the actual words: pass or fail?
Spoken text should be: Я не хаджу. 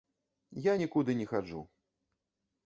fail